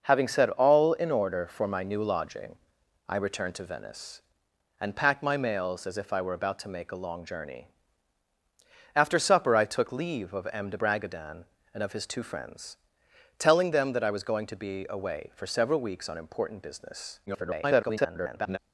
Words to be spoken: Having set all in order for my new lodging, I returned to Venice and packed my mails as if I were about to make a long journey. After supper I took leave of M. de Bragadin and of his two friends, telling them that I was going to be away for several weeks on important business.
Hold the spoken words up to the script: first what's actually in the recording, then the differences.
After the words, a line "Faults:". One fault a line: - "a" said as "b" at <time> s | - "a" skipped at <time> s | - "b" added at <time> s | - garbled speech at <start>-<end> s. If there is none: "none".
Having set all in order for my new lodging, I returned to Venice and packed my mails as if I were about to make a long journey. After supper I took leave of M. de Bragadin and of his two friends, telling them that I was going to be away for several weeks on important business. [garbled]
Faults:
- garbled speech at 17.3-18.6 s